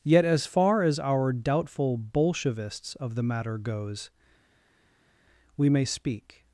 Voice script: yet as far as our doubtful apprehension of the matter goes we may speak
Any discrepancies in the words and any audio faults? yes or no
yes